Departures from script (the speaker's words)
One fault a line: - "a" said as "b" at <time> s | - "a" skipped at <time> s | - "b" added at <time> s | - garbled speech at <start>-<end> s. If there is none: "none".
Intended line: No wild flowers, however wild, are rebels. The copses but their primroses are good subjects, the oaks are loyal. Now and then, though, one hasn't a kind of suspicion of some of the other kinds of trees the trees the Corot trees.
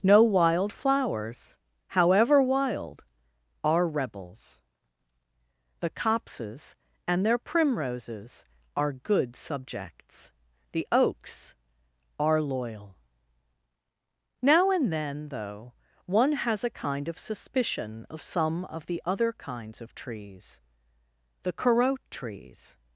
- "but" said as "and" at 7.1 s
- "hasn't" said as "has" at 16.3 s
- "trees the" skipped at 21.5 s